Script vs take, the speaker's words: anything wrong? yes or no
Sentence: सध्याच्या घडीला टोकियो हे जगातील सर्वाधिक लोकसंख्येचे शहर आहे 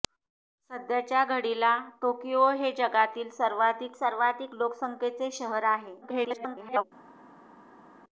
yes